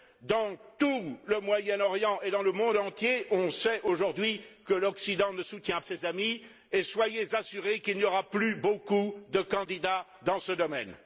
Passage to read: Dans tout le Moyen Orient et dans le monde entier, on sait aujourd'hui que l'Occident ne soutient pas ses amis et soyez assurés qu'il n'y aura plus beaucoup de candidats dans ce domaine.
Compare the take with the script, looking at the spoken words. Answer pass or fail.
fail